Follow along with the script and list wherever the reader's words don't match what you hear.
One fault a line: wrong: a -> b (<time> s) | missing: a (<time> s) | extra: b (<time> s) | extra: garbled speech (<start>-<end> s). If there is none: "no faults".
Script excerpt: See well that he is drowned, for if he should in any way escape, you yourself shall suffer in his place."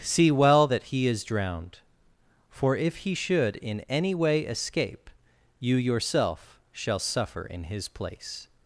no faults